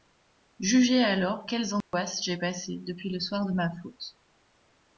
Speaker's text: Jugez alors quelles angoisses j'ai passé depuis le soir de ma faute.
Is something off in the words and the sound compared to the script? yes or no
yes